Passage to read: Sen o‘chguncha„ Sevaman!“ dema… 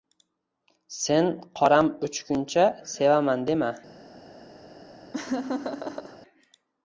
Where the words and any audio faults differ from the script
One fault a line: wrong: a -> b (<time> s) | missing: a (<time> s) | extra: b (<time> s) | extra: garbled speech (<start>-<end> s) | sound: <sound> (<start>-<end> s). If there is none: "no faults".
extra: qoram (1.6 s)
sound: laugh (5.1-6.2 s)